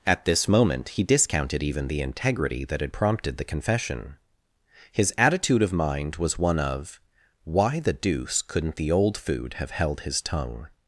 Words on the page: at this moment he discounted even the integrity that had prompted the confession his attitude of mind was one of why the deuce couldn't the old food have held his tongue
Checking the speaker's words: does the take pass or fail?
pass